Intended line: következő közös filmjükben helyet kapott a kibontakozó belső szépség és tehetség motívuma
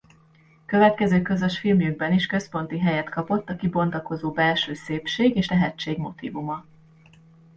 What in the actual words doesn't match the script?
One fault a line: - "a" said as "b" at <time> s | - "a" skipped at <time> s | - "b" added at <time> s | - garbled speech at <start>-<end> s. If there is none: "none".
- "is központi" added at 2.1 s